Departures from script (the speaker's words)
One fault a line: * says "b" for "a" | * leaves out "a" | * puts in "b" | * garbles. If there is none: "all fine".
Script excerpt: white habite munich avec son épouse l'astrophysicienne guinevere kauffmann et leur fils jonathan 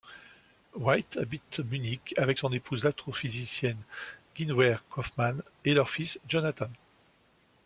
all fine